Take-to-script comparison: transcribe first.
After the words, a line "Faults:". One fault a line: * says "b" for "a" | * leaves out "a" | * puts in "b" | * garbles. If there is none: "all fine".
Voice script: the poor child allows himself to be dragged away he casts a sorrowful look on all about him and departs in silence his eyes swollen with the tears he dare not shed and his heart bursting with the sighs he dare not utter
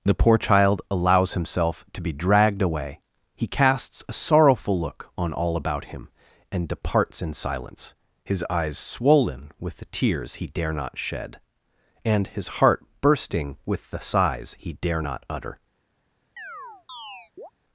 the poor child allows himself to be dragged away he casts a sorrowful look on all about him and departs in silence his eyes swollen with the tears he dare not shed and his heart bursting with the sighs he dare not utter
Faults:
all fine